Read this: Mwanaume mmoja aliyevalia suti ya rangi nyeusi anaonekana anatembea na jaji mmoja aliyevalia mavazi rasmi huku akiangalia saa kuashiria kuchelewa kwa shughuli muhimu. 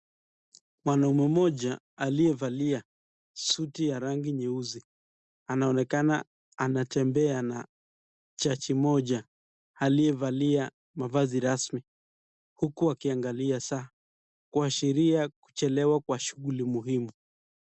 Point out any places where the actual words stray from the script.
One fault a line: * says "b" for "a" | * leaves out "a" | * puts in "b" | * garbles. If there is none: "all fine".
all fine